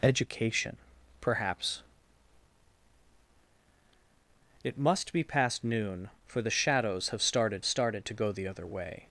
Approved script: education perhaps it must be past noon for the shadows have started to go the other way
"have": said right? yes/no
yes